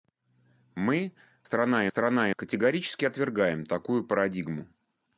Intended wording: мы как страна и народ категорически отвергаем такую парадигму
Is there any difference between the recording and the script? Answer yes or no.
yes